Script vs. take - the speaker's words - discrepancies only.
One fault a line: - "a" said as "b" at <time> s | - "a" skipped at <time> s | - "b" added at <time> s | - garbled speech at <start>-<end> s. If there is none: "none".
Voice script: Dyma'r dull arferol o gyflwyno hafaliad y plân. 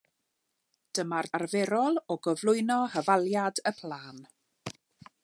- "dull" skipped at 1.3 s